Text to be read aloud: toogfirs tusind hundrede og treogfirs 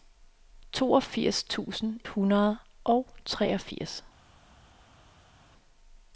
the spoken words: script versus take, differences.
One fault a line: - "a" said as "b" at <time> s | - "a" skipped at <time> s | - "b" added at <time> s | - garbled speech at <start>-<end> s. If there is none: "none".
none